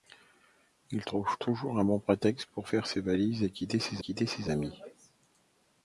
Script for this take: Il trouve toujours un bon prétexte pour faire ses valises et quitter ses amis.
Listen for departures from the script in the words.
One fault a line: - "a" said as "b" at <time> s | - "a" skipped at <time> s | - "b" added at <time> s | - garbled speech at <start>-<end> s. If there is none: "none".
- "quitter ses" added at 4.0 s